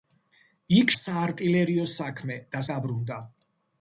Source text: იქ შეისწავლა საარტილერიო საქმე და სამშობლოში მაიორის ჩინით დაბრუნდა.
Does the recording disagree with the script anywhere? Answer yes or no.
yes